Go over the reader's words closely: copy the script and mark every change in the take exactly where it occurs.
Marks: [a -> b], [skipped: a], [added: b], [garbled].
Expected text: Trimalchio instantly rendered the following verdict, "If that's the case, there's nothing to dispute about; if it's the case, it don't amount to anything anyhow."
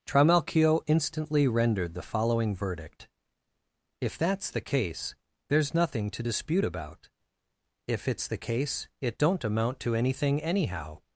Trimalchio instantly rendered the following verdict, "If that's the case, there's nothing to dispute about; if it's the case, it don't amount to anything anyhow."